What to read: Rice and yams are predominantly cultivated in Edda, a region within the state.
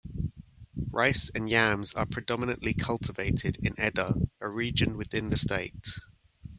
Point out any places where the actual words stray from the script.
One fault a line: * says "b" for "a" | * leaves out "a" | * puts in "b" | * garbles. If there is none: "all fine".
all fine